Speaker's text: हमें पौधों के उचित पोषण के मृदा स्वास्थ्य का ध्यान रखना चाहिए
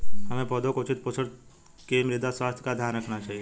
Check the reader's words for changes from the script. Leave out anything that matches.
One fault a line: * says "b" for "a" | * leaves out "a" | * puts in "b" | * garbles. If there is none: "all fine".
all fine